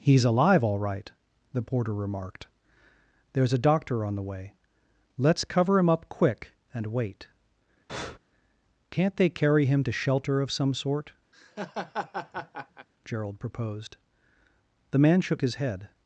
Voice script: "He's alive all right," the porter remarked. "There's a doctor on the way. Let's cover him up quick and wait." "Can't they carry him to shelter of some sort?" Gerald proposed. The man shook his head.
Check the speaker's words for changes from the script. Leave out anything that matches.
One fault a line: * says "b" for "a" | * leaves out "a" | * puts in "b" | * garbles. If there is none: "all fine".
all fine